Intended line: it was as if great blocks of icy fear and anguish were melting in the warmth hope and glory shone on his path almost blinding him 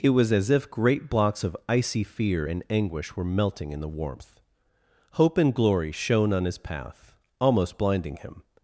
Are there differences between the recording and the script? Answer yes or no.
no